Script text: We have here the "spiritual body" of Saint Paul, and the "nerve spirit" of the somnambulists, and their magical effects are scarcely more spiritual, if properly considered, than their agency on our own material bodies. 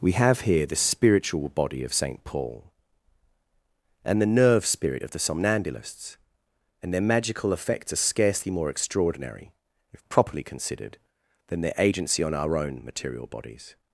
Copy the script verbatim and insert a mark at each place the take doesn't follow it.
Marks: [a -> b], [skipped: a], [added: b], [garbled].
We have here the "spiritual body" of Saint Paul, and the "nerve spirit" of the somnambulists, and their magical effects are scarcely more [spiritual, -> extraordinary] if properly considered, than their agency on our own material bodies.